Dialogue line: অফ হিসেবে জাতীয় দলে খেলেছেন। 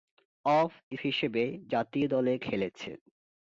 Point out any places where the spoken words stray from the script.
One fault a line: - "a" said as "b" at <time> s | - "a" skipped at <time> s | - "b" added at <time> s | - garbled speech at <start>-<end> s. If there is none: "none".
none